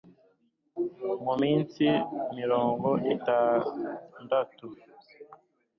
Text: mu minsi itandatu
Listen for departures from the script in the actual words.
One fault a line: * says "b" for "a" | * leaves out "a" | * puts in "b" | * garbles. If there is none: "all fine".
* puts in "mirongo"